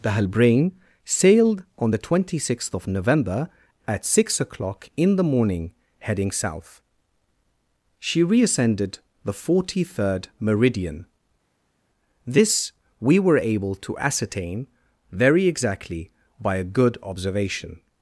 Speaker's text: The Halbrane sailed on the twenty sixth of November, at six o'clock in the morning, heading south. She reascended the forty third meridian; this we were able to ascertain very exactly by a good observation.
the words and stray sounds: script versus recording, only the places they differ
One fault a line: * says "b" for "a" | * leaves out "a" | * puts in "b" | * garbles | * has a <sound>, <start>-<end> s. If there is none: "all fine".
all fine